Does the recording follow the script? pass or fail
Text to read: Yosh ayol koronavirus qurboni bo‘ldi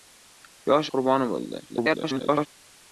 fail